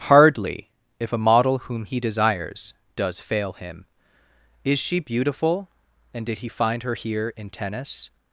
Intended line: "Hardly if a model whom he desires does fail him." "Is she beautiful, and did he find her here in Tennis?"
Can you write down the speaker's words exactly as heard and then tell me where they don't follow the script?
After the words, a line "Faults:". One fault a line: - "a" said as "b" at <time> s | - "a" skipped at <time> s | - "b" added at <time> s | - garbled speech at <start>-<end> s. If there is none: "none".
"Hardly if a model whom he desires does fail him." "Is she beautiful, and did he find her here in Tennis?"
Faults:
none